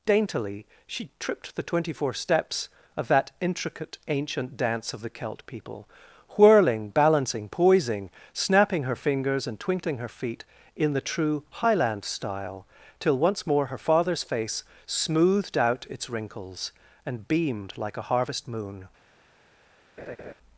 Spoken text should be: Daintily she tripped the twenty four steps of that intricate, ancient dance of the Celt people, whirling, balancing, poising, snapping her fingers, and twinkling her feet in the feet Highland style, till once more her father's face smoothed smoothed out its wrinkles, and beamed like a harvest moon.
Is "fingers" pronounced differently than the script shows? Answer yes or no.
no